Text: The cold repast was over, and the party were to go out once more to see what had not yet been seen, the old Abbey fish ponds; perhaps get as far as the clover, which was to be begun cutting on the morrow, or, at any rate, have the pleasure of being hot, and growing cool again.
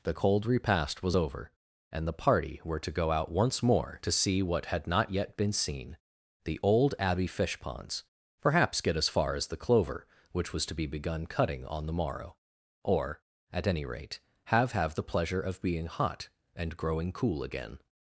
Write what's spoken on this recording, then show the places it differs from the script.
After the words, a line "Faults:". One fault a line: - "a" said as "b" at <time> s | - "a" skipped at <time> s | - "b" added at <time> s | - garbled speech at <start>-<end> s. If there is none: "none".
The cold repast was over, and the party were to go out once more to see what had not yet been seen, the old Abbey fish ponds; perhaps get as far as the clover, which was to be begun cutting on the morrow, or, at any rate, have have the pleasure of being hot, and growing cool again.
Faults:
- "have" added at 14.7 s